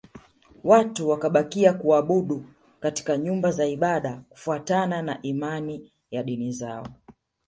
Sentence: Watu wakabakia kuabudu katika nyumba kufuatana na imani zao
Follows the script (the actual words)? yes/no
no